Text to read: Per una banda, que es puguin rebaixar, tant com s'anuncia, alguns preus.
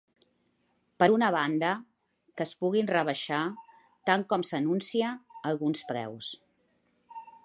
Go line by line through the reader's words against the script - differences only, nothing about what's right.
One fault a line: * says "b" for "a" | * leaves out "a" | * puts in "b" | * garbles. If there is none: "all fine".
all fine